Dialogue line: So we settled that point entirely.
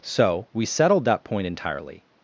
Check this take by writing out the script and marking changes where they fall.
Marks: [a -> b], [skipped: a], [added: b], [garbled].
So we settled that point entirely.